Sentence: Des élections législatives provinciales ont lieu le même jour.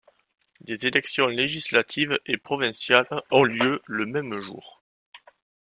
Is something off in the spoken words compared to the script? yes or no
yes